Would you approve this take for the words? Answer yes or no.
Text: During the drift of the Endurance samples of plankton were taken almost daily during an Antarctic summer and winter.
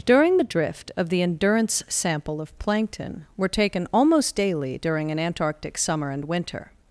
no